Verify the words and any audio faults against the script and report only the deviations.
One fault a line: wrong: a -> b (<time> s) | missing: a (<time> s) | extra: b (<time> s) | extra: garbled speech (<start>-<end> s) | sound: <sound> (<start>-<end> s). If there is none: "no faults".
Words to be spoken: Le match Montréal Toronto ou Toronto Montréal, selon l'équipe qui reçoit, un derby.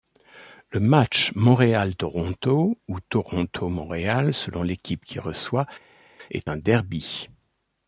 extra: est (6.3 s)